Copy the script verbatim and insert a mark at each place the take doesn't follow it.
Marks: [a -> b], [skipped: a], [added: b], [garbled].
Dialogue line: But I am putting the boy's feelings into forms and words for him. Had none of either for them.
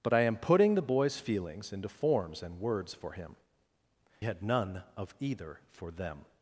But I am putting the boy's feelings into forms and words for him. Had none of either for them.